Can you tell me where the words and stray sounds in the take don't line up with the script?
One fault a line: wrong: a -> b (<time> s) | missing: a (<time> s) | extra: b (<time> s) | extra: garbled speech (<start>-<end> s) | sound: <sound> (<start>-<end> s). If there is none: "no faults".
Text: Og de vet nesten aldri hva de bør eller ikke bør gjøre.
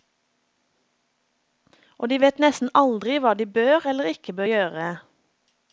no faults